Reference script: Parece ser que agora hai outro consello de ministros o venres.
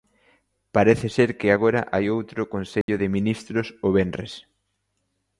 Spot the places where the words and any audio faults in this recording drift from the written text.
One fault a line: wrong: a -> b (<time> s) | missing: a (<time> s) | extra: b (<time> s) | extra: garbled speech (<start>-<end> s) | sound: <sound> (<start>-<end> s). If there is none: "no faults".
sound: dropout (2.8-2.9 s)